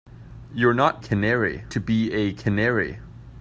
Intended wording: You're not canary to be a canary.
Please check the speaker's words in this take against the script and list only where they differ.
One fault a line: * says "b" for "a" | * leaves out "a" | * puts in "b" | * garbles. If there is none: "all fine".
all fine